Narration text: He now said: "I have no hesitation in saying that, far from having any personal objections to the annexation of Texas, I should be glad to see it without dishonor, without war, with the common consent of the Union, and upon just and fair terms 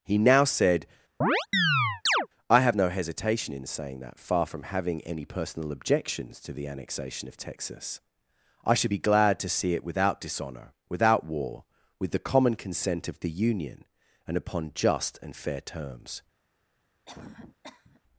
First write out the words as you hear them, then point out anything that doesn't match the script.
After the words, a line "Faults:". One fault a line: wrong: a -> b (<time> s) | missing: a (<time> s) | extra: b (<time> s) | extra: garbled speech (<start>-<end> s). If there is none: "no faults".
He now said: "I have no hesitation in saying that, far from having any personal objections to the annexation of Texas, I should be glad to see it without dishonor, without war, with the common consent of the Union, and upon just and fair terms
Faults:
no faults